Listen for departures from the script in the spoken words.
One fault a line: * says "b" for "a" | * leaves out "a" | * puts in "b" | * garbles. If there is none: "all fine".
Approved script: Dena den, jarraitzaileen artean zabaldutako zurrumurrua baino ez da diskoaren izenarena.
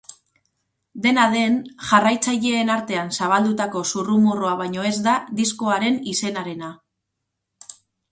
all fine